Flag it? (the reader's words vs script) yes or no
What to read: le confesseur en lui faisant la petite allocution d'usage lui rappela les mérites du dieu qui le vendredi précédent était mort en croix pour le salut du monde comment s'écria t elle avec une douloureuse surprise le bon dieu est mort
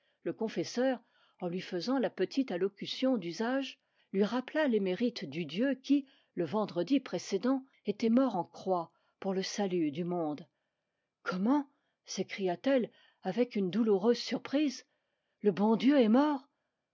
no